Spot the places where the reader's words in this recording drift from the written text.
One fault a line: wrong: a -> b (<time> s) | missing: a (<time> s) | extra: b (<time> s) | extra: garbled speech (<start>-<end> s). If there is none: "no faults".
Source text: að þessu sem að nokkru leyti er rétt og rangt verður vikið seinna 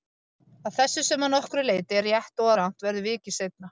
no faults